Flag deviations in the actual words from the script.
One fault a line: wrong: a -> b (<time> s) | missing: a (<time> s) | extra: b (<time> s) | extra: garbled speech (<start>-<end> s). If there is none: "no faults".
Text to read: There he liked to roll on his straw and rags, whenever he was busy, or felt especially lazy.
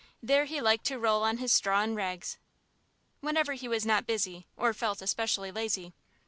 extra: not (3.8 s)